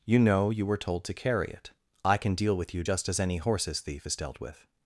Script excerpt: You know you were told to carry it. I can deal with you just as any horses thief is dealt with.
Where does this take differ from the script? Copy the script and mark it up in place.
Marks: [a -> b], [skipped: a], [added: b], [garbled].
You know you were told to carry it. I can deal with you just as any horses thief is dealt with.